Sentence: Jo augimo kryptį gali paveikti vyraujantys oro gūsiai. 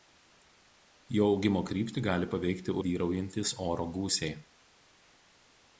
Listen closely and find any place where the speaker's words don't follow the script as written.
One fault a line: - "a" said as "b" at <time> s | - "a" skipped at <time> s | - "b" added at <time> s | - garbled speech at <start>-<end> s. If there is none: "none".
none